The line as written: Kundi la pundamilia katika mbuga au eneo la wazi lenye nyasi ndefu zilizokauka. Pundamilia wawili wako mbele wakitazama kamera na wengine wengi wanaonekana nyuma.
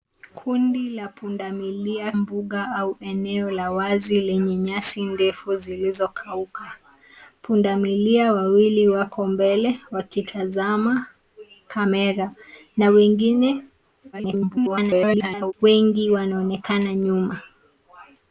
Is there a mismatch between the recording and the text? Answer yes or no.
yes